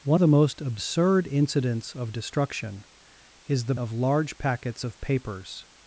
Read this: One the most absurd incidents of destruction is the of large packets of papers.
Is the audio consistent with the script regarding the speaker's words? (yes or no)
yes